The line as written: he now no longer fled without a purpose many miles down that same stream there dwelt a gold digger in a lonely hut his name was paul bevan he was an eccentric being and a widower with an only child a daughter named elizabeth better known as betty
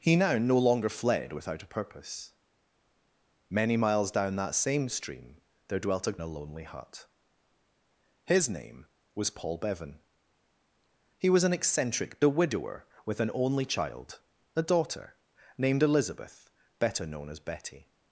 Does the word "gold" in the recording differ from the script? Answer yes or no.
yes